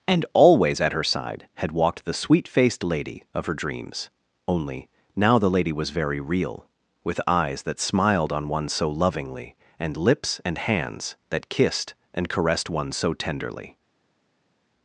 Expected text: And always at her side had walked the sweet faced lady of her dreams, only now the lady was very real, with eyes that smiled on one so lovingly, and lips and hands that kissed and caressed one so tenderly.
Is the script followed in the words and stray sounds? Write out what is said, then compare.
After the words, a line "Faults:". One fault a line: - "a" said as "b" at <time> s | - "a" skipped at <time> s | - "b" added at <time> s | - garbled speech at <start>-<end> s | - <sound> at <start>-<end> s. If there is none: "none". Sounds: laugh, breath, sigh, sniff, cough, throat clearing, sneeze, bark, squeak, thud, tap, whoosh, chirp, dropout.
And always at her side had walked the sweet faced lady of her dreams, only now the lady was very real, with eyes that smiled on one so lovingly, and lips and hands that kissed and caressed one so tenderly.
Faults:
none